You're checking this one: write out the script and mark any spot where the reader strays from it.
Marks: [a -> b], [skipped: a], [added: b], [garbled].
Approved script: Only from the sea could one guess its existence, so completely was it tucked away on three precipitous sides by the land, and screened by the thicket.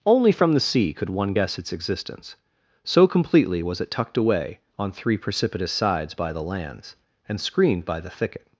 Only from the sea could one guess its existence, so completely was it tucked away on three precipitous sides by the [land, -> lands] and screened by the thicket.